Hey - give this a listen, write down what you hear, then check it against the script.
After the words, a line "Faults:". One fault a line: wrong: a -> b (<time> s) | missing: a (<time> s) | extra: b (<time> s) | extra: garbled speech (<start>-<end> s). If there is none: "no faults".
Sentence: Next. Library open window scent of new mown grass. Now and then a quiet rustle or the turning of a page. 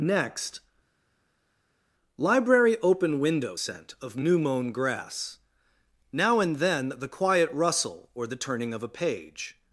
Next. Library open window scent of new mown grass. Now and then the quiet rustle or the turning of a page.
Faults:
wrong: a -> the (7.0 s)